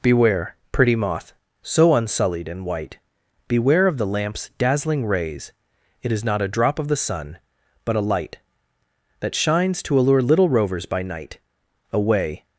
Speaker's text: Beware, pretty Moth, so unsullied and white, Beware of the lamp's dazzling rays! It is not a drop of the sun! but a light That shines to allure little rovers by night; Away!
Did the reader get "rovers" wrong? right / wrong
right